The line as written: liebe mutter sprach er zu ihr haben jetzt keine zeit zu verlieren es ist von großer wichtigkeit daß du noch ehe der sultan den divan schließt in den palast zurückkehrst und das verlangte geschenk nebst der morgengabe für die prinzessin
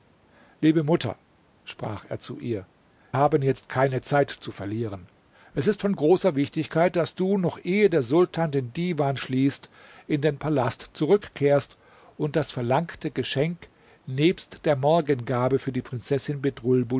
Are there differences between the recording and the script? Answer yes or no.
no